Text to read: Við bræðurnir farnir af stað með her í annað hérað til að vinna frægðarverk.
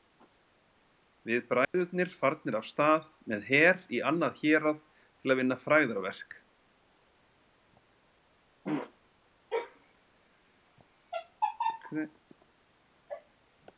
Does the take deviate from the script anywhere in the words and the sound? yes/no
yes